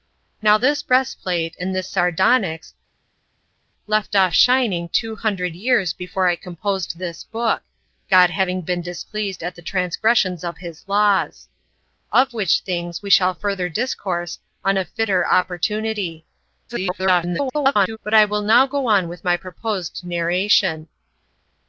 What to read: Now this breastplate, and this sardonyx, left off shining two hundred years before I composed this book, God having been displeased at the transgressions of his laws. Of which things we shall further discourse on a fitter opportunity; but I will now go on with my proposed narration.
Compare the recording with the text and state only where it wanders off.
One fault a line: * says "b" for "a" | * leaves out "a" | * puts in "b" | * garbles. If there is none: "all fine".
* garbles